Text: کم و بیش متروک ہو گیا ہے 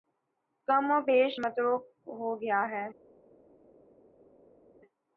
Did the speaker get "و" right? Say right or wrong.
right